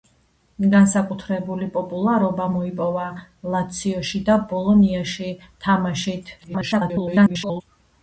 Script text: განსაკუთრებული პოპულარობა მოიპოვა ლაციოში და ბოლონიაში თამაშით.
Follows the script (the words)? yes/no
no